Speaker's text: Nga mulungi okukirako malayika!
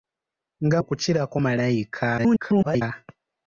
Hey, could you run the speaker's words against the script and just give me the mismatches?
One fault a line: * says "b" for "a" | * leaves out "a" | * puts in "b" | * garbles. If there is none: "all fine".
* leaves out "mulungi"
* garbles